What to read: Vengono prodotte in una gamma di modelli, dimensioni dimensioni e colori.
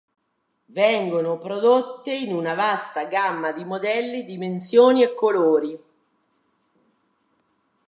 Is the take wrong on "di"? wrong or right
right